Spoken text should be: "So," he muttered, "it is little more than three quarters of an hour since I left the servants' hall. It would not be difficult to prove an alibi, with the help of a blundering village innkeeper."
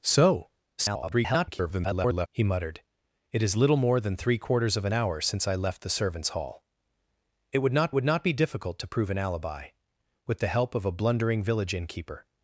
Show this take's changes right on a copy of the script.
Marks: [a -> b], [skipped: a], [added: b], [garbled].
"So," [garbled] he muttered, "it is little more than three quarters of an hour since I left the servants' hall. It would not [added: would not] be difficult to prove an alibi, with the help of a blundering village innkeeper."